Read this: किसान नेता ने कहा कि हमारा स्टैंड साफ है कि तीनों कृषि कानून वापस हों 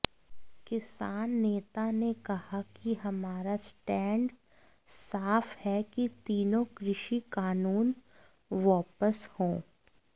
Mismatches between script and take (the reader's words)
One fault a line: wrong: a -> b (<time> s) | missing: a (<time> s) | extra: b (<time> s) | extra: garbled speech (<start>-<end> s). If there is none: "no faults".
no faults